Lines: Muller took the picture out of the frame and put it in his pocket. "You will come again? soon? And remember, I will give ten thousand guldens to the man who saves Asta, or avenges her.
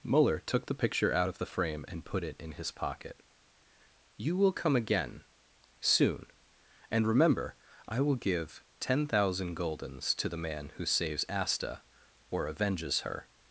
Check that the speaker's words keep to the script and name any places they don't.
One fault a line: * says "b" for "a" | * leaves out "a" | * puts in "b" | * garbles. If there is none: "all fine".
all fine